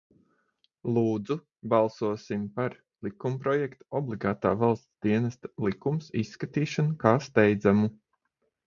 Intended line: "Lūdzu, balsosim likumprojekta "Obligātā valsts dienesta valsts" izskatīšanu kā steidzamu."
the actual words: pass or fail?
fail